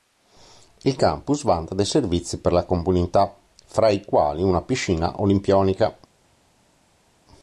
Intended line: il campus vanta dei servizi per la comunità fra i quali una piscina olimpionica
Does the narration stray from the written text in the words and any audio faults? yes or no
no